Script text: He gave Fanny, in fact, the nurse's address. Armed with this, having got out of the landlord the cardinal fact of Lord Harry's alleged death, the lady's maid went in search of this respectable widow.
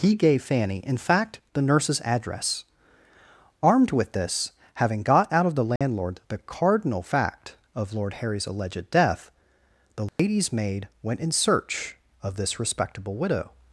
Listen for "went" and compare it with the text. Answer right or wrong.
right